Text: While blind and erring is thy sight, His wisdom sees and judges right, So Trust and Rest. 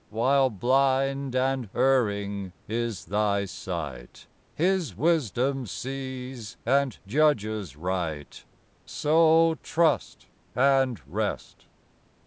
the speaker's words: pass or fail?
pass